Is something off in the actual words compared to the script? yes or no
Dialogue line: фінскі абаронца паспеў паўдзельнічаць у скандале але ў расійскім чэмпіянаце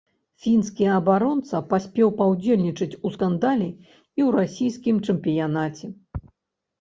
yes